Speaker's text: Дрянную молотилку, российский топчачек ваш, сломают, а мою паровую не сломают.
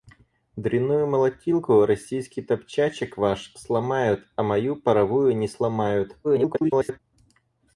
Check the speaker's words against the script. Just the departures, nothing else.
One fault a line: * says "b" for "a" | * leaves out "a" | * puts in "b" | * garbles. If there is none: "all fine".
* garbles